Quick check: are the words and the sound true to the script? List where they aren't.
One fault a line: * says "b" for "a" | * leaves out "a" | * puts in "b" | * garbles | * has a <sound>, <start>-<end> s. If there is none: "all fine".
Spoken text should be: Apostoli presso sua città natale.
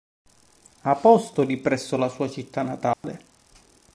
* puts in "la"
* has a dropout, 2.9-3.0 s